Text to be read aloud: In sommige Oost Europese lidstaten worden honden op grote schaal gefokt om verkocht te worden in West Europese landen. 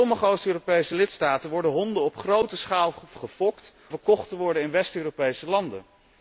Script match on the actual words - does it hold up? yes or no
no